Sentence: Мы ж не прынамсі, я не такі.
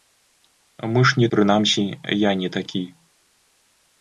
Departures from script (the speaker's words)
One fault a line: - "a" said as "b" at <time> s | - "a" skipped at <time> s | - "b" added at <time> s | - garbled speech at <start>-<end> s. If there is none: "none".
none